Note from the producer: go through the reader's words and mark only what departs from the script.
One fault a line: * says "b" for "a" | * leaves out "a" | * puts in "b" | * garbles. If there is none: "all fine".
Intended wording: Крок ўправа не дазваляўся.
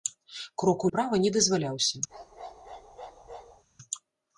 all fine